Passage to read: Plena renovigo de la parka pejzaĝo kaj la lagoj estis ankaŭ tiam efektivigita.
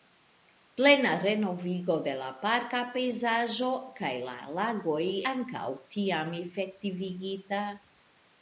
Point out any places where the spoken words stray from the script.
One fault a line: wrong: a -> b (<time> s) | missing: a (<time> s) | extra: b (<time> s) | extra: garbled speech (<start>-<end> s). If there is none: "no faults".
missing: estis (5.0 s)